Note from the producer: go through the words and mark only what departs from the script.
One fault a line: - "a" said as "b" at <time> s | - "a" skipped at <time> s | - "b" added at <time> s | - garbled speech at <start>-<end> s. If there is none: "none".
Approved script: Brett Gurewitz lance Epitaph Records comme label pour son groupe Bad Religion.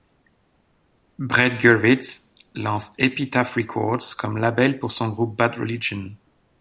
none